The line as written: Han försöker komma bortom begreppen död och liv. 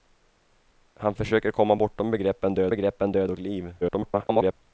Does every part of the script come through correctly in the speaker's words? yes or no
no